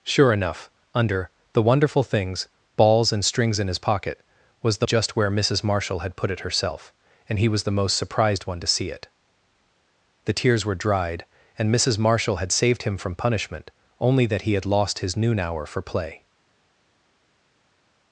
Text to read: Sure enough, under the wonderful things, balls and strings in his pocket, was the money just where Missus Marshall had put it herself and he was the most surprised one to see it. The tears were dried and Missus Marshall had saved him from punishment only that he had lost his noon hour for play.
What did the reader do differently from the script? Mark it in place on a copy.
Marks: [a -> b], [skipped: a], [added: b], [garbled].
Sure enough, under the wonderful things, balls and strings in his pocket, was the [skipped: money] just where Missus Marshall had put it herself and he was the most surprised one to see it. The tears were dried and Missus Marshall had saved him from punishment only that he had lost his noon hour for play.